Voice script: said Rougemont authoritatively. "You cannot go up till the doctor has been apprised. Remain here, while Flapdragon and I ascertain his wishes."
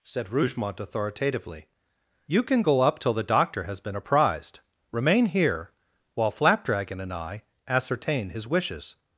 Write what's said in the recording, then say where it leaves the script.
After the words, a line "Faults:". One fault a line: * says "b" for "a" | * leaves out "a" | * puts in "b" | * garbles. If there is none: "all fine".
said Rougemont authoritatively. "You can go up till the doctor has been apprised. Remain here, while Flapdragon and I ascertain his wishes."
Faults:
* says "can" for "cannot"